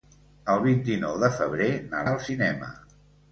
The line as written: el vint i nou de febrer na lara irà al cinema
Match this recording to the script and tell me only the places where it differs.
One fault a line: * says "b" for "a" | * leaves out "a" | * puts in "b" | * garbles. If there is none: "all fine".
* leaves out "lara irà"